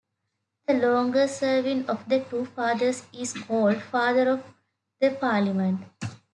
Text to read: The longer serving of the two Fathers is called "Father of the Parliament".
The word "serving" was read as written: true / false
true